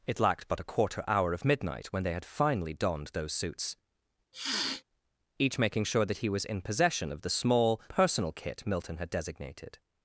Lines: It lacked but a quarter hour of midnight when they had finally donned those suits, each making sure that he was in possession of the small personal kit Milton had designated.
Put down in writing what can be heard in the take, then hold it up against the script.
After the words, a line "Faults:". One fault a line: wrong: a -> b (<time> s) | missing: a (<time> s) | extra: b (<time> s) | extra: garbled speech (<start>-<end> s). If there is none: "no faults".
It lacked but a quarter hour of midnight when they had finally donned those suits, each making sure that he was in possession of the small personal kit Milton had designated.
Faults:
no faults